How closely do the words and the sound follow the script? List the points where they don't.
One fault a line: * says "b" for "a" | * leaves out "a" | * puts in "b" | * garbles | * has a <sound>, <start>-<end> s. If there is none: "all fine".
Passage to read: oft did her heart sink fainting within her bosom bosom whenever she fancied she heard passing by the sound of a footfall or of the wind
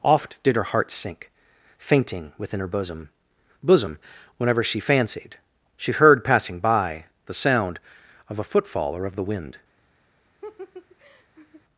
* has a laugh, 10.4-11.6 s